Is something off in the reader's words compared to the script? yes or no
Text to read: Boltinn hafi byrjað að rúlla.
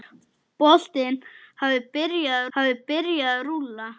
yes